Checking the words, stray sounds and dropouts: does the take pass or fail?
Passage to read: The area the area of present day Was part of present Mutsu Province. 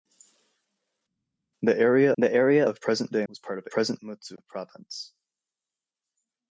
pass